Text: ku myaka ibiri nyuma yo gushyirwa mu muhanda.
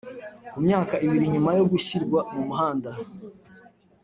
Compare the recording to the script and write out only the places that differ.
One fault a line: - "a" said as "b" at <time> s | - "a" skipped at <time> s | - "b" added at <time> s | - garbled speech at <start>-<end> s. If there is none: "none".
none